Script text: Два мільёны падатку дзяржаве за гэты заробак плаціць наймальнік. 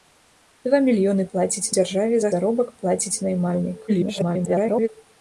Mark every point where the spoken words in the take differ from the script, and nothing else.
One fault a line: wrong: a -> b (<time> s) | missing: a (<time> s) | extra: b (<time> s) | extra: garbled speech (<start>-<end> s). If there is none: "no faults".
wrong: падатку -> плаціць (1.3 s)
missing: гэты (2.3 s)
extra: garbled speech (3.9-4.9 s)